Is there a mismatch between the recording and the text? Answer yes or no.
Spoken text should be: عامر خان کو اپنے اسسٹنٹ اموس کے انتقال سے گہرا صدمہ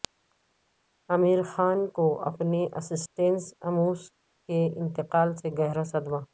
no